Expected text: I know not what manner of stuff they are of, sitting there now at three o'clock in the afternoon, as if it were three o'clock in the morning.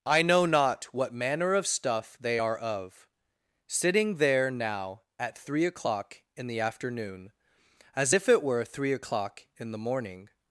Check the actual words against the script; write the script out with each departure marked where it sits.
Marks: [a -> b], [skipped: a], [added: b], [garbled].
I know not what manner of stuff they are of, sitting there now at three o'clock in the afternoon, as if it were three o'clock in the morning.